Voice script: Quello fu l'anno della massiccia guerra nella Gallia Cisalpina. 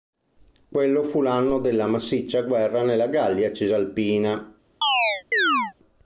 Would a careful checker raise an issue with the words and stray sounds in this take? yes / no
yes